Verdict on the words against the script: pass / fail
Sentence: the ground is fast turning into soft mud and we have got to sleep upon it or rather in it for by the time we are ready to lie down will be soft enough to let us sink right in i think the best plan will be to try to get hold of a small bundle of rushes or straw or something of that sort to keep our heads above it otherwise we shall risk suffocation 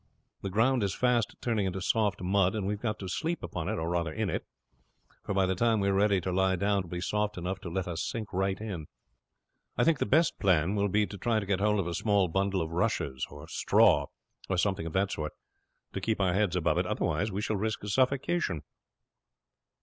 pass